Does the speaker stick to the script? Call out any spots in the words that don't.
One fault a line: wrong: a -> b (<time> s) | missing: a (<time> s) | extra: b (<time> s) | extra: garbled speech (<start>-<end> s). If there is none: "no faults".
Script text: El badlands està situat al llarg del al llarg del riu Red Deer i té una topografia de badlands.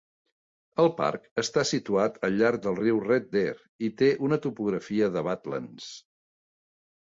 wrong: badlands -> parc (1.0 s)
missing: al llarg del (2.8 s)